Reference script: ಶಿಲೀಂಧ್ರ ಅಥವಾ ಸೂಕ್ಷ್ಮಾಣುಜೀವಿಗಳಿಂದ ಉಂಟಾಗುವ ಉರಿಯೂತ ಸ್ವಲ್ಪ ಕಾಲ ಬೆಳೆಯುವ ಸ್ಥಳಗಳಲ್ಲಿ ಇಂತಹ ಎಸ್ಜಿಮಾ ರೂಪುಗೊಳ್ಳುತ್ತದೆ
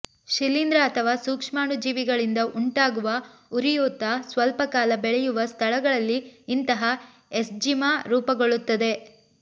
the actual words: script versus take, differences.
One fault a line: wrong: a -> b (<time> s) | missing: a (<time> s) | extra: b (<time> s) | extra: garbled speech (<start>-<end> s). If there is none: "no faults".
no faults